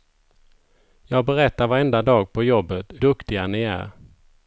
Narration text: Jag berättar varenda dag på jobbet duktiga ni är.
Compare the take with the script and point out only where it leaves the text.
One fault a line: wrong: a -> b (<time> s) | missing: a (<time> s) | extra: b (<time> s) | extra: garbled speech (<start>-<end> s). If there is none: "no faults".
no faults